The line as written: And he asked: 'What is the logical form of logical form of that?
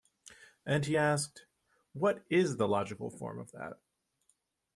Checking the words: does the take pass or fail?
fail